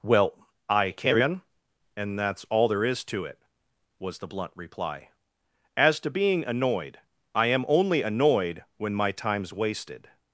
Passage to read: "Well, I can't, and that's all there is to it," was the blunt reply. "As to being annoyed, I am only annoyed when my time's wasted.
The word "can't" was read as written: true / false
false